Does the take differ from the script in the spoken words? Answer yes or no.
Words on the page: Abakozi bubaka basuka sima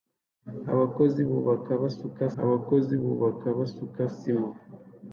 yes